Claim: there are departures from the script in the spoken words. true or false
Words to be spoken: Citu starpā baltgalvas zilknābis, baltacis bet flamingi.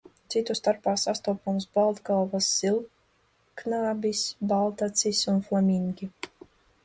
true